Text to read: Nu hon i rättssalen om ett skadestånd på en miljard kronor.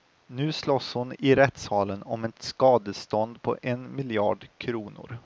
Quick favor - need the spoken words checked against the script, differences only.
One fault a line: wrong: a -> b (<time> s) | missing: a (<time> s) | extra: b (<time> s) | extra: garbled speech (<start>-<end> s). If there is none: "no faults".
extra: slåss (0.5 s)